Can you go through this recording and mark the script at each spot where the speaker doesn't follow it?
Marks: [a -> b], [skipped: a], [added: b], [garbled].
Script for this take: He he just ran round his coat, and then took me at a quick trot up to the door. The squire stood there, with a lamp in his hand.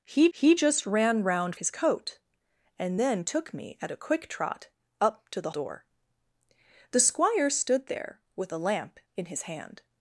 He he just ran round his coat, and then took me at a quick trot up to the door. The squire stood there, with a lamp in his hand.